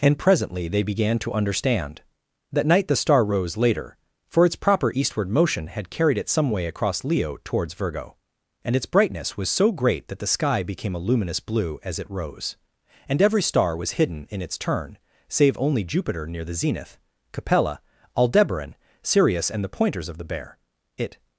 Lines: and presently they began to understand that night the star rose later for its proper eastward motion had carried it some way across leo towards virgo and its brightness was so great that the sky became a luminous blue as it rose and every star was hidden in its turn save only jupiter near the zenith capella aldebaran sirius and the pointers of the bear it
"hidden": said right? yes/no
yes